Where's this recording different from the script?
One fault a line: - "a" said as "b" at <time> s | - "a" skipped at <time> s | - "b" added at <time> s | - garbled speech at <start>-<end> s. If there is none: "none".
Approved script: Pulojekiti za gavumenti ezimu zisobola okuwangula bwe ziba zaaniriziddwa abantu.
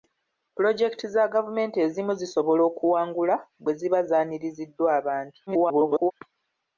- garbled speech at 5.5-6.1 s